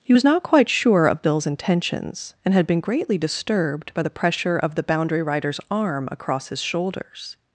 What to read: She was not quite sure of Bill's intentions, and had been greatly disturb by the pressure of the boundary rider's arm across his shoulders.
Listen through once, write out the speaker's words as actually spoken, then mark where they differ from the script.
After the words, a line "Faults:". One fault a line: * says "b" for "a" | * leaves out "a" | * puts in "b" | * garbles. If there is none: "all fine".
He was not quite sure of Bill's intentions, and had been greatly disturbed by the pressure of the boundary rider's arm across his shoulders.
Faults:
* says "He" for "She"
* says "disturbed" for "disturb"